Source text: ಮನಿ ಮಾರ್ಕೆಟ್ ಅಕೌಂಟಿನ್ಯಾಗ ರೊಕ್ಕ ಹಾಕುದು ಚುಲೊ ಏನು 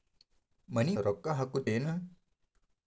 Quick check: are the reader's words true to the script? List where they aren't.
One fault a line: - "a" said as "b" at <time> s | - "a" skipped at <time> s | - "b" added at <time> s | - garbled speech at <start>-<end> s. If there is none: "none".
- "ಮಾರ್ಕೆಟ್ ಅಕೌಂಟಿನ್ಯಾಗ" skipped at 0.9 s
- "ಚುಲೊ" skipped at 1.7 s